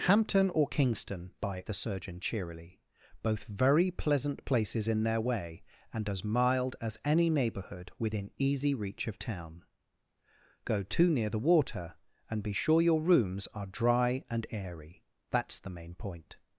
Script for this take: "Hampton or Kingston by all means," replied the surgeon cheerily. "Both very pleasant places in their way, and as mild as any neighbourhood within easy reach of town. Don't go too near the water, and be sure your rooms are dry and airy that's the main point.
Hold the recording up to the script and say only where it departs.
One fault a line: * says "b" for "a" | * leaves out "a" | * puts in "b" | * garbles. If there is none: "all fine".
* leaves out "all means replied"
* leaves out "Don't"